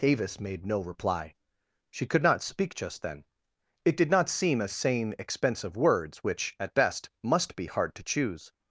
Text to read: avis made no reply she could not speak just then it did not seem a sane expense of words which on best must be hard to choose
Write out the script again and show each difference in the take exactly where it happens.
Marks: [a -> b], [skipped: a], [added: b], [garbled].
avis made no reply she could not speak just then it did not seem a sane expense of words which [on -> at] best must be hard to choose